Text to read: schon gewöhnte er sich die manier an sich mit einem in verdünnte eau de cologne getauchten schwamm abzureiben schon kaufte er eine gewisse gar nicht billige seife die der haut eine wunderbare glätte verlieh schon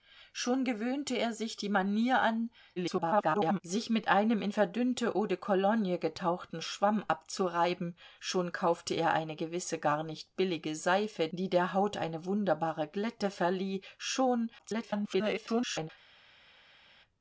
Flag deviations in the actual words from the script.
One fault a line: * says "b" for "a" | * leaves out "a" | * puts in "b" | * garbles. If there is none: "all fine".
* garbles
* garbles